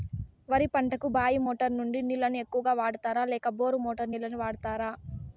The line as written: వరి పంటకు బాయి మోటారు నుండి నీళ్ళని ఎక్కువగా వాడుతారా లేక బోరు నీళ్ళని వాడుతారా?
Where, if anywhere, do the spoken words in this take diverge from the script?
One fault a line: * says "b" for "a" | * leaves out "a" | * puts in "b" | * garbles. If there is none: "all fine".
* puts in "మోటారు"